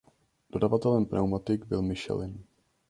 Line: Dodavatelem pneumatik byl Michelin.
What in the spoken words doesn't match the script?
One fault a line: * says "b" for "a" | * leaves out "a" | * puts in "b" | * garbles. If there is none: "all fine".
all fine